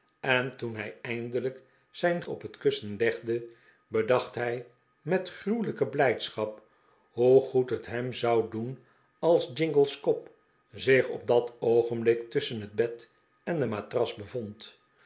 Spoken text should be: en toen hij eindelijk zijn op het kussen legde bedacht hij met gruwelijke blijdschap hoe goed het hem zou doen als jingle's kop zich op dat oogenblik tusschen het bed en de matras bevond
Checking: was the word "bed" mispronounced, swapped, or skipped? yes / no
no